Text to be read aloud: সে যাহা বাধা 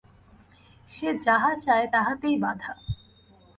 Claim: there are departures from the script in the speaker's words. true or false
true